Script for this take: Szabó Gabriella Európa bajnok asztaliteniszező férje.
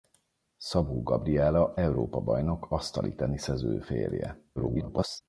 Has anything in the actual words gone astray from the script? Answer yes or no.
yes